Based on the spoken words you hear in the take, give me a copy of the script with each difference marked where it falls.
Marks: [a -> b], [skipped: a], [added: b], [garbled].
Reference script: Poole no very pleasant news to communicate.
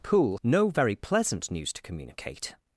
Poole no very pleasant news to communicate.